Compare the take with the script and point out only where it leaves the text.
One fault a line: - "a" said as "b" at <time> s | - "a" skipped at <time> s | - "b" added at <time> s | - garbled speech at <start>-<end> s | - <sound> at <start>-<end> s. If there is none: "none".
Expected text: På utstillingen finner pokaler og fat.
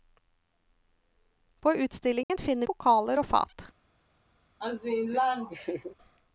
- dropout at 2.2-2.3 s
- laugh at 4.6-6.0 s